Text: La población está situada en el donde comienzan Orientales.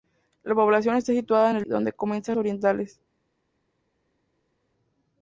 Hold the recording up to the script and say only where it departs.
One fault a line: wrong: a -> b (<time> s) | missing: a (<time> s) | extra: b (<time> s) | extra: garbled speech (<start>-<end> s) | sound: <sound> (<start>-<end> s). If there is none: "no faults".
no faults